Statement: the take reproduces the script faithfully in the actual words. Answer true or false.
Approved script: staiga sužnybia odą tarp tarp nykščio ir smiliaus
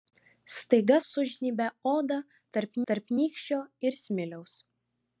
true